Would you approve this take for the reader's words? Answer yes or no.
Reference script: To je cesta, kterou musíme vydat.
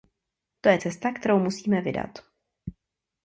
yes